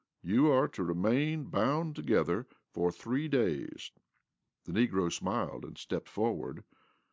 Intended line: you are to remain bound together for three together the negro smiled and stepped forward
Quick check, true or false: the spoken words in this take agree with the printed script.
false